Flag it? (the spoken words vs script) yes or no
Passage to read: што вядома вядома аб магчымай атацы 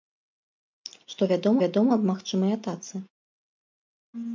no